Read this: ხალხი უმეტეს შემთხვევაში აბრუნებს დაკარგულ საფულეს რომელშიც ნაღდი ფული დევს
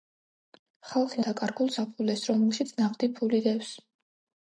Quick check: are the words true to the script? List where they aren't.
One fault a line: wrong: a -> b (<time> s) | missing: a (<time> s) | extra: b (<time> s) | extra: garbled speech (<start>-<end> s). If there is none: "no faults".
missing: უმეტეს შემთხვევაში აბრუნებს (1.2 s)